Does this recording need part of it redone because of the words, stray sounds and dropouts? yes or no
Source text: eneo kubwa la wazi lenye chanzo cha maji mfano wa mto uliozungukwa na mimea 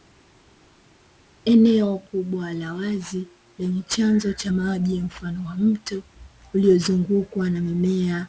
no